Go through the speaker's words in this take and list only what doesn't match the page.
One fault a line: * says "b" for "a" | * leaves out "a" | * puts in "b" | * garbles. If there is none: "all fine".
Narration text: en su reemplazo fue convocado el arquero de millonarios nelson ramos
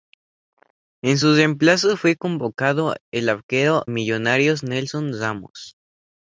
* leaves out "de"